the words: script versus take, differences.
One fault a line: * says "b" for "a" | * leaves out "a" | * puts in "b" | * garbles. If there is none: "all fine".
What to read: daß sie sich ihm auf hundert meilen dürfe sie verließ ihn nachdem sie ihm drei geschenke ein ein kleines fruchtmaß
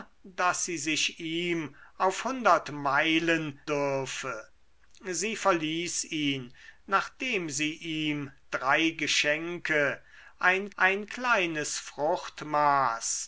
all fine